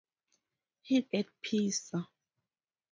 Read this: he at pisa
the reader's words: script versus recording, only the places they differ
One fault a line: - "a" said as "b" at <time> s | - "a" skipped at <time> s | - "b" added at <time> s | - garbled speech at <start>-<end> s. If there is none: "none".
none